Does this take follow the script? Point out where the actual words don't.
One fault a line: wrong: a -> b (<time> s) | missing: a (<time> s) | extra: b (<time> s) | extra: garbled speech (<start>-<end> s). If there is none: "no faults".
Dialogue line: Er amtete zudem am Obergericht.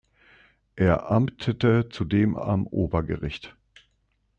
no faults